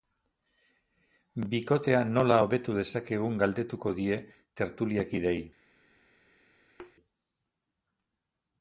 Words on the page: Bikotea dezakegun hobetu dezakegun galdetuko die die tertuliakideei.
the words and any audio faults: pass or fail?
fail